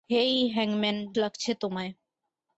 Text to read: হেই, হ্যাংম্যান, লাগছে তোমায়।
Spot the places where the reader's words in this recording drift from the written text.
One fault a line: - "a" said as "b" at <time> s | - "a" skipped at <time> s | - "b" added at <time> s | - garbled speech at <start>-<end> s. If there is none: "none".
none